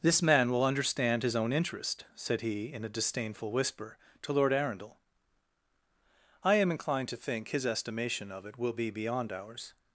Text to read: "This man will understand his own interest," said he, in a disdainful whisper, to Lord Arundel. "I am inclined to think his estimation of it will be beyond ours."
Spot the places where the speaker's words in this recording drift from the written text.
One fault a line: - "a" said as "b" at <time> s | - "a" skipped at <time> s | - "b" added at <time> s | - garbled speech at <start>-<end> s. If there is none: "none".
none